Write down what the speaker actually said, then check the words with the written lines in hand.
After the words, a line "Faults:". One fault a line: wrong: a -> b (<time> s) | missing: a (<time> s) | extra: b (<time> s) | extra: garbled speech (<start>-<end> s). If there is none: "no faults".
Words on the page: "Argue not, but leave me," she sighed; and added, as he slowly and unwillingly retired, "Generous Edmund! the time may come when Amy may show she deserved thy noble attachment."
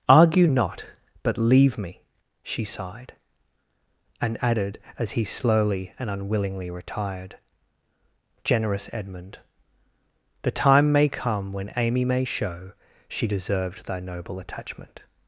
"Argue not, but leave me," she sighed; and added, as he slowly and unwillingly retired, "Generous Edmund! the time may come when Amy may show she deserved thy noble attachment."
Faults:
no faults